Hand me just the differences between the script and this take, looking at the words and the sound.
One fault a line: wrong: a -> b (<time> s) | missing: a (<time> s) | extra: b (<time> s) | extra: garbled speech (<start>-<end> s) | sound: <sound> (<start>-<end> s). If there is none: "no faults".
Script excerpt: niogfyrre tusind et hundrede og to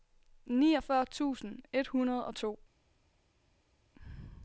no faults